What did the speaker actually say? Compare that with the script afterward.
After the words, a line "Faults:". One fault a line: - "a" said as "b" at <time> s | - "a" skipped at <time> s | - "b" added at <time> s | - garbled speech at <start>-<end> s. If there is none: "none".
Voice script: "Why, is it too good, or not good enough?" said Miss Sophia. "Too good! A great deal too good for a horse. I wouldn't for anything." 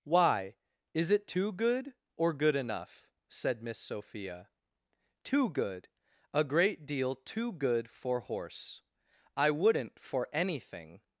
"Why, is it too good, or good enough?" said Miss Sophia. "Too good! A great deal too good for horse. I wouldn't for anything."
Faults:
- "not" skipped at 2.3 s
- "a" skipped at 8.2 s